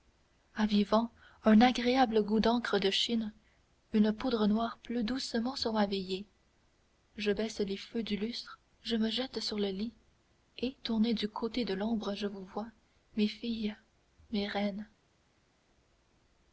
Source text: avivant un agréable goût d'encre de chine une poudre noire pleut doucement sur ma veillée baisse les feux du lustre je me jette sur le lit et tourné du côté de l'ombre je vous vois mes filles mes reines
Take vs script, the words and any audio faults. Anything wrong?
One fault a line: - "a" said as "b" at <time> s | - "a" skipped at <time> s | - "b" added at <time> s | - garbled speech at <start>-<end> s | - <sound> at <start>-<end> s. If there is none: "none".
- "je" added at 7.2 s